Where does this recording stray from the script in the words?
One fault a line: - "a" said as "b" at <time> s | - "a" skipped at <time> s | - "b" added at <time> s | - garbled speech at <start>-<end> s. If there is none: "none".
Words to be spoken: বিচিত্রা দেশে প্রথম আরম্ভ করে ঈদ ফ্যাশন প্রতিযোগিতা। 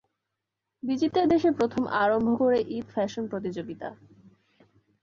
none